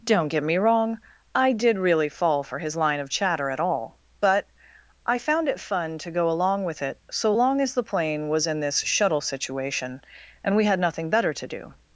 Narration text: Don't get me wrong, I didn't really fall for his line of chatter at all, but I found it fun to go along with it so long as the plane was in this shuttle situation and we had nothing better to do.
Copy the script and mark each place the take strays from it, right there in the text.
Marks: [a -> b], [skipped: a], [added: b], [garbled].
Don't get me wrong, I [didn't -> did] really fall for his line of chatter at all, but I found it fun to go along with it so long as the plane was in this shuttle situation and we had nothing better to do.